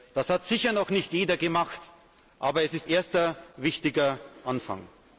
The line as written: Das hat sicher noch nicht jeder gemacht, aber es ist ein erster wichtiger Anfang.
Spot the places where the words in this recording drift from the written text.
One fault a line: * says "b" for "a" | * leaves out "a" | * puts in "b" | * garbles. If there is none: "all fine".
* leaves out "ein"